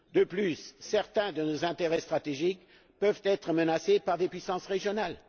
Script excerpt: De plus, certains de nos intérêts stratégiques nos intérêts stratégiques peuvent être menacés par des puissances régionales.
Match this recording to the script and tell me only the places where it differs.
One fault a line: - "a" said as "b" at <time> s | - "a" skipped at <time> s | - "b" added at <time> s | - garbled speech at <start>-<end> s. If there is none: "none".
- "nos intérêts stratégiques" skipped at 2.6 s